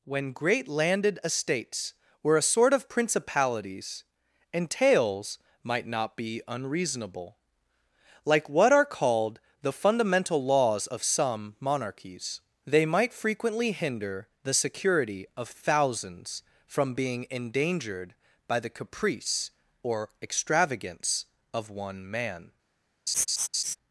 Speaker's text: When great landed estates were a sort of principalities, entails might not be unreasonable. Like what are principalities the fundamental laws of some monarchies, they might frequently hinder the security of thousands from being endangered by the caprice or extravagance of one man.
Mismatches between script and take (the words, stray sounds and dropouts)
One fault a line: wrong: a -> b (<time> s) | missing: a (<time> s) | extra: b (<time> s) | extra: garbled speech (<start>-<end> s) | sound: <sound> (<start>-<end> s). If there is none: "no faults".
wrong: principalities -> called (8.8 s)
sound: laugh (23.1-23.8 s)